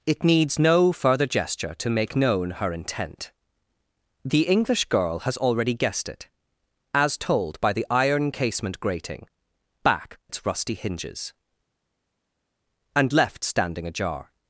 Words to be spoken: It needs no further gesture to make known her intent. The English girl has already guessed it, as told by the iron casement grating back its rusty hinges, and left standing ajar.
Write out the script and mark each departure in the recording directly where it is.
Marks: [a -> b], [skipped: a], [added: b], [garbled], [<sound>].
It needs no further gesture to make known her intent. The English girl has already guessed it, as told by the iron casement grating back its rusty hinges, and left standing ajar.